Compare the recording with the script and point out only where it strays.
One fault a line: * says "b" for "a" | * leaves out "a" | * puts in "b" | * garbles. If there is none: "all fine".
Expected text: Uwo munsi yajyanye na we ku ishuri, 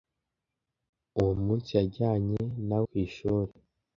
* leaves out "we"